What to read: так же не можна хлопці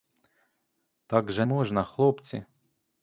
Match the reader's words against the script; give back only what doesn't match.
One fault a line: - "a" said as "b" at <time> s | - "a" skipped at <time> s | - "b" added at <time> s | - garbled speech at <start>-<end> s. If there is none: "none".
- "не" skipped at 1.4 s